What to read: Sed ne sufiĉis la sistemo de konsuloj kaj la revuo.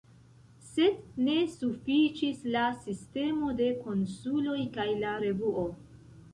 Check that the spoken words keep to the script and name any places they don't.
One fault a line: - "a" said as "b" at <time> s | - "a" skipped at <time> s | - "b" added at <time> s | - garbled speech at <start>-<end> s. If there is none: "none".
none